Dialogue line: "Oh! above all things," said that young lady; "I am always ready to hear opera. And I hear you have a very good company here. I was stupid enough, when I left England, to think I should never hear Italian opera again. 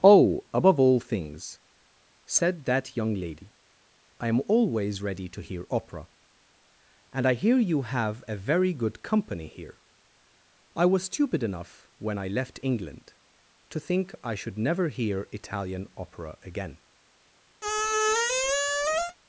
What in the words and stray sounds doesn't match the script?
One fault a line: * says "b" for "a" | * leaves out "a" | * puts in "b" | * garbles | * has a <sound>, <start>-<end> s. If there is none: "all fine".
* has a squeak, 17.6-19.2 s